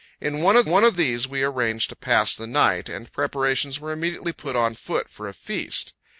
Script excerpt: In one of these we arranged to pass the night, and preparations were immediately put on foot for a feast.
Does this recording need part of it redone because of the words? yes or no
yes